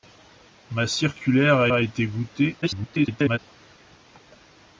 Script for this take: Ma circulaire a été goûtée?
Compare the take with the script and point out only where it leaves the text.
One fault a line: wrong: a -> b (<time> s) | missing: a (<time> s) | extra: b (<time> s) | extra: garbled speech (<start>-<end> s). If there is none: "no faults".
extra: a (1.7 s)
extra: garbled speech (2.6-3.4 s)